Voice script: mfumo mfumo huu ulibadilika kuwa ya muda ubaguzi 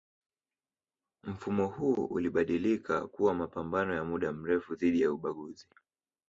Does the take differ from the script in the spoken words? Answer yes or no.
yes